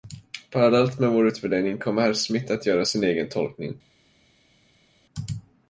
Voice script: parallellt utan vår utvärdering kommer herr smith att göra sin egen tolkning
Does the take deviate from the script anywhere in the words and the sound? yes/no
yes